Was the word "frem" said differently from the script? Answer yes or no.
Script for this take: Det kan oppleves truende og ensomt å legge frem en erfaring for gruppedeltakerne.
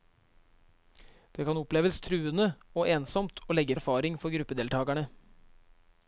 yes